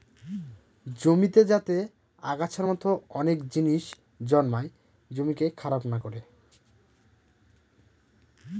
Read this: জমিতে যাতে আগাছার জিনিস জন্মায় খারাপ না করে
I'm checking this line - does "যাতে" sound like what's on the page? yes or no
yes